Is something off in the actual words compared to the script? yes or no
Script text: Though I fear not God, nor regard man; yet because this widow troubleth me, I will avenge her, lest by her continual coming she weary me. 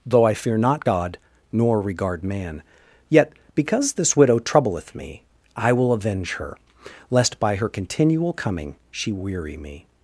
no